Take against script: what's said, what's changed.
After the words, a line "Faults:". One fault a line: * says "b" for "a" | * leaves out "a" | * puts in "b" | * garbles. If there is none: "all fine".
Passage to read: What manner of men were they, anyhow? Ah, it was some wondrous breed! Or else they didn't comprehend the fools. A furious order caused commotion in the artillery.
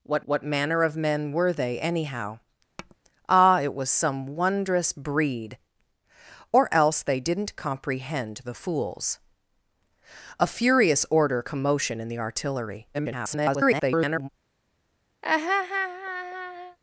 What what manner of men were they, anyhow? Ah, it was some wondrous breed! Or else they didn't comprehend the fools. A furious order commotion in the artillery. [garbled]
Faults:
* puts in "what"
* leaves out "caused"
* garbles